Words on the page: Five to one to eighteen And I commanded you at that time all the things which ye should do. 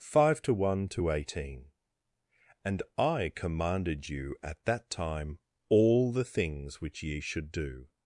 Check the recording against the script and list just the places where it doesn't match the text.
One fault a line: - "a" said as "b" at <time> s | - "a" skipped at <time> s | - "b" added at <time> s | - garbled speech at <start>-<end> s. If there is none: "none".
none